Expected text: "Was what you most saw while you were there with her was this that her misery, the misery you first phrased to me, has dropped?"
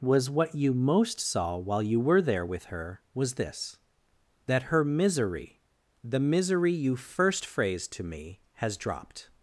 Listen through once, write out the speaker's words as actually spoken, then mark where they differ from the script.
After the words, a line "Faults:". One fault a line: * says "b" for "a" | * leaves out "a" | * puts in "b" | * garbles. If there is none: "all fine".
"Was what you most saw while you were there with her was this that her misery, the misery you first phrased to me, has dropped?"
Faults:
all fine